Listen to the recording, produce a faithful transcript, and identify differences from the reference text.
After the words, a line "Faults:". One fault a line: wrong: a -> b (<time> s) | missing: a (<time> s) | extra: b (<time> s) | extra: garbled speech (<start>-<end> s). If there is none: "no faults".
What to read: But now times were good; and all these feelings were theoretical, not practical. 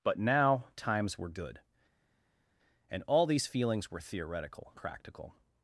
But now times were good; and all these feelings were theoretical, practical.
Faults:
missing: not (4.7 s)